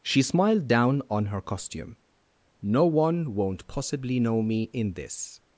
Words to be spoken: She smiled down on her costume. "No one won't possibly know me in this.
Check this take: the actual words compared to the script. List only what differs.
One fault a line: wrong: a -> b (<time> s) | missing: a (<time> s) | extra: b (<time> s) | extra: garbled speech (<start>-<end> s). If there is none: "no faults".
no faults